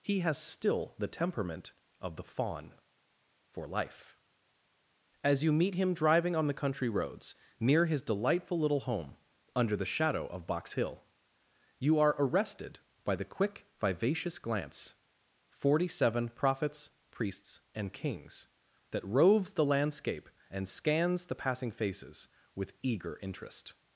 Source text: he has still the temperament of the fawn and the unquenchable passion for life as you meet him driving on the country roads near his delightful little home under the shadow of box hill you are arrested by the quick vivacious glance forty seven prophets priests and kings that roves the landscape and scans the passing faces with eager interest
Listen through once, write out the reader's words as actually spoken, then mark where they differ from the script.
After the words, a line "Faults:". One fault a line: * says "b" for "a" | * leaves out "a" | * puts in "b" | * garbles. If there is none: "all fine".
he has still the temperament of the fawn for life as you meet him driving on the country roads near his delightful little home under the shadow of box hill you are arrested by the quick vivacious glance forty seven prophets priests and kings that roves the landscape and scans the passing faces with eager interest
Faults:
* leaves out "and the unquenchable passion"